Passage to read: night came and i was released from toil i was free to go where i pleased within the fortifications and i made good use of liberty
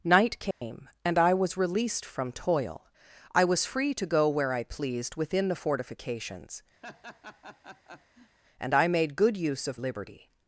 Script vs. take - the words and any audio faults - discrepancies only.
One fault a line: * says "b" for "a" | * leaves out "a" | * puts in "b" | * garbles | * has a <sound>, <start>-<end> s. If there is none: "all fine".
* has a dropout, 0.5-0.6 s
* has a laugh, 6.8-8.4 s